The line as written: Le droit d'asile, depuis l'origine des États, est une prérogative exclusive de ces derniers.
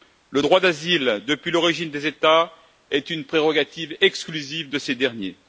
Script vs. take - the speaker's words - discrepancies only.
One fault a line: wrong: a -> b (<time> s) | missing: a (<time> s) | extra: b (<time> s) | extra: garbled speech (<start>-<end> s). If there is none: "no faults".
no faults